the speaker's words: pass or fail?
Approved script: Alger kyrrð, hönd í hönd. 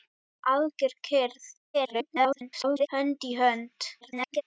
fail